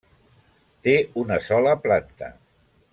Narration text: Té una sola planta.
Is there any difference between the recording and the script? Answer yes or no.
no